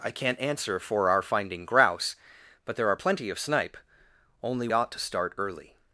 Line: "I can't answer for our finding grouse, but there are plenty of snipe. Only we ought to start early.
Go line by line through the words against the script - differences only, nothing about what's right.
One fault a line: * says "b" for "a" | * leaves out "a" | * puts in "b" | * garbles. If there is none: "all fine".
* leaves out "we"